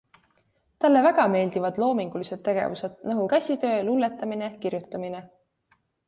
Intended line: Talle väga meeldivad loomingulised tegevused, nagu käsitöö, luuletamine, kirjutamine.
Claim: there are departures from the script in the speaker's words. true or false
false